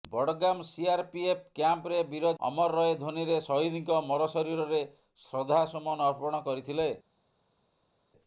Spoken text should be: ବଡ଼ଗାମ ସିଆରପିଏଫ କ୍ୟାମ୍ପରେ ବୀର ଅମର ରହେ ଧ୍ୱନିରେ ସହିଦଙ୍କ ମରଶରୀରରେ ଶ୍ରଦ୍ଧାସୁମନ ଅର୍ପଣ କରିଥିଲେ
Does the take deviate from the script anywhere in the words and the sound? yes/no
no